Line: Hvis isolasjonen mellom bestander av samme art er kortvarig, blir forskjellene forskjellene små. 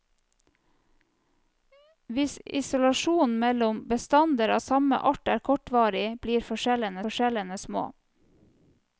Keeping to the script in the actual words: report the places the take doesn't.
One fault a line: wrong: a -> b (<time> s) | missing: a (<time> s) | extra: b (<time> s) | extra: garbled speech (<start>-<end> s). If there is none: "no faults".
no faults